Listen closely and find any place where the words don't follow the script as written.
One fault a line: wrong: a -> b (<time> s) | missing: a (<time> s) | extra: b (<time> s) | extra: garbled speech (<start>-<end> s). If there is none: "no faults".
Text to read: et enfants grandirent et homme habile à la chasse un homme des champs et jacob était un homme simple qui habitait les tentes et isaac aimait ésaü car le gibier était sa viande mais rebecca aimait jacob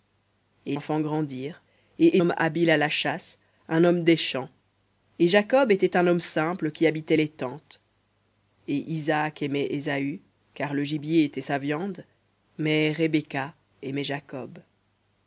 no faults